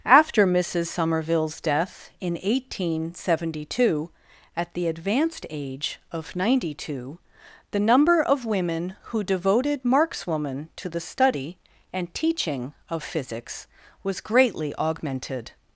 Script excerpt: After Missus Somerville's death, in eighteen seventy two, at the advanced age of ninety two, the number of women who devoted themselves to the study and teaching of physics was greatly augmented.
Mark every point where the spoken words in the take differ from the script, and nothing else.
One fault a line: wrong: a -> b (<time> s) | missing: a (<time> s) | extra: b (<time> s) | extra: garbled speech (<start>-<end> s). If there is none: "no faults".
wrong: themselves -> markswoman (9.8 s)